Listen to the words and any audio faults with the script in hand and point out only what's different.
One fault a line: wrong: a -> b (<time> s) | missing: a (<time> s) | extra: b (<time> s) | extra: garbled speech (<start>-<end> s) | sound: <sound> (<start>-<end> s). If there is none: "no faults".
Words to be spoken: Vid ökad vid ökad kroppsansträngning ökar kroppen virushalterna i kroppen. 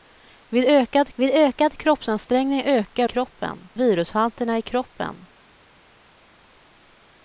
no faults